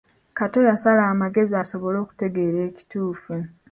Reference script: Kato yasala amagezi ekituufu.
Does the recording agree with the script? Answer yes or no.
no